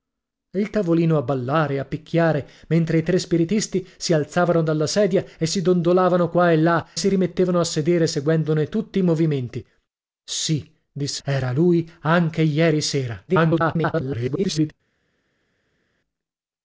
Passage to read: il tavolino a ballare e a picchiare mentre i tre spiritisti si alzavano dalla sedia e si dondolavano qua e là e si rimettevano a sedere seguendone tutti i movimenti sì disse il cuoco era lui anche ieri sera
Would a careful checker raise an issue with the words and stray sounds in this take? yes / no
yes